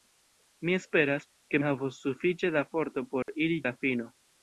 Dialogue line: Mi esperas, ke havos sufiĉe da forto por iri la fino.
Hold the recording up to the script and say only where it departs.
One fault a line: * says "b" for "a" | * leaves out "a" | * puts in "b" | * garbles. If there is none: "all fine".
all fine